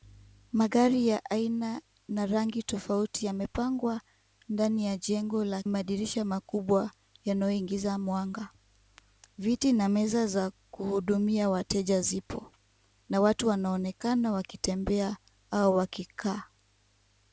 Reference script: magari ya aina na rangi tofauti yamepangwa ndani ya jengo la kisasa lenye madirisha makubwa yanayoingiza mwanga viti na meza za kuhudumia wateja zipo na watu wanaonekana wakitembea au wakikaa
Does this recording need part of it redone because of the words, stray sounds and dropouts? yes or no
yes